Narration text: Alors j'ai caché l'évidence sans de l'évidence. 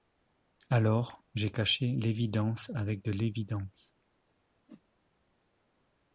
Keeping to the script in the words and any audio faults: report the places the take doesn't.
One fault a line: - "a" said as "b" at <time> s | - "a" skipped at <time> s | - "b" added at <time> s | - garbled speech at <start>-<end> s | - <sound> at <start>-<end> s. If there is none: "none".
- "sans" said as "avec" at 2.7 s
- whoosh at 4.7-4.8 s